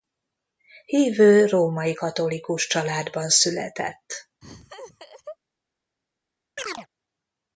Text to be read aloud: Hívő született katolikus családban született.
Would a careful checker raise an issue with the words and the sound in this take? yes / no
yes